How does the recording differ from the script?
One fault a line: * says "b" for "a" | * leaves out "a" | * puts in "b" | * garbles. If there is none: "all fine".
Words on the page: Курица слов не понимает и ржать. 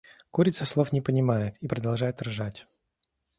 * puts in "продолжает"